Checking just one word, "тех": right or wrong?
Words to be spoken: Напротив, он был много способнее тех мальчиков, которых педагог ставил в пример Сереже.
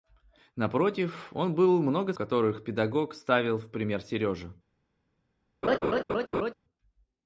wrong